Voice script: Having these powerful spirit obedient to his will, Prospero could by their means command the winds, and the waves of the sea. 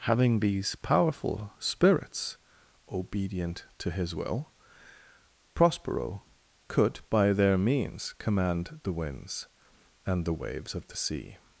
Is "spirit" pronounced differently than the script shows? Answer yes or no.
yes